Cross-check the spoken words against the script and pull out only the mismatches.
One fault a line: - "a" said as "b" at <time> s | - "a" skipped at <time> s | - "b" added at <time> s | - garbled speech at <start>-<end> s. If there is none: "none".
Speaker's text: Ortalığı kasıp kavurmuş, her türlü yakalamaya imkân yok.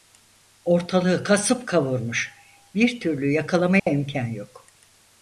- "her" said as "bir" at 2.8 s